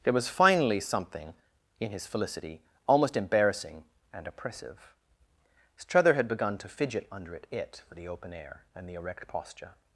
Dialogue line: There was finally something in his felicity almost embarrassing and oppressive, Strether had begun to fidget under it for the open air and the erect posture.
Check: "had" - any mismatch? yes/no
no